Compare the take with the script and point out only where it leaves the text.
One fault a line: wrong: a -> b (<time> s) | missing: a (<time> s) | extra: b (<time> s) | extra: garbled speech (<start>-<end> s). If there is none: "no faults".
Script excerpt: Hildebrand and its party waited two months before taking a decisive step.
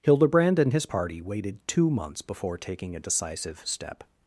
wrong: its -> his (0.7 s)